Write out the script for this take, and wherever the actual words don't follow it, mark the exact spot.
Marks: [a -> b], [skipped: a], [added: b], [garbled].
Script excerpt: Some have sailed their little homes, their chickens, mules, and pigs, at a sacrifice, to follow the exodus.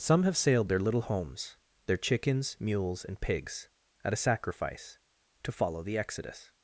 Some have sailed their little homes, their chickens, mules, and pigs, at a sacrifice, to follow the exodus.